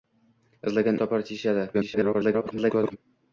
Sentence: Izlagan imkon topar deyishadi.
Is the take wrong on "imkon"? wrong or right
wrong